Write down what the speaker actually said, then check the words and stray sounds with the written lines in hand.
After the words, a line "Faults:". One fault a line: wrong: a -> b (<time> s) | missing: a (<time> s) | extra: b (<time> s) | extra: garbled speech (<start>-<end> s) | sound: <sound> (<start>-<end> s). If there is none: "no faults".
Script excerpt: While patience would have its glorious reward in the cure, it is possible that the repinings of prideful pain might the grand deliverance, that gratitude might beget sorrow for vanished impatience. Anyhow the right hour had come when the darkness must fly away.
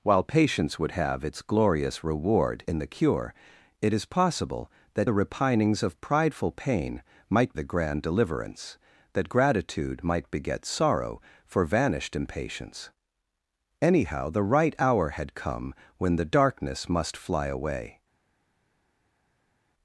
While patience would have its glorious reward in the cure, it is possible that the repinings of prideful pain might the grand deliverance, that gratitude might beget sorrow for vanished impatience. Anyhow the right hour had come when the darkness must fly away.
Faults:
no faults